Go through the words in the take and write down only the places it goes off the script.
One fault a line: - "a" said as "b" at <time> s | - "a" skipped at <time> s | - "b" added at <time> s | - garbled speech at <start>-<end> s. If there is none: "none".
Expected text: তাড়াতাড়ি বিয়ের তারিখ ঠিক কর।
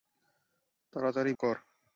- "বিয়ের তারিখ ঠিক" skipped at 1.3 s